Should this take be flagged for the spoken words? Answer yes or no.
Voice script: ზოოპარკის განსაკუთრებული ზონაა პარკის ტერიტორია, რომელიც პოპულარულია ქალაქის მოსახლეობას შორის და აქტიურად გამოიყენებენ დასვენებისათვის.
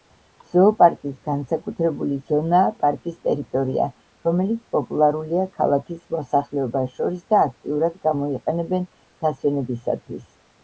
no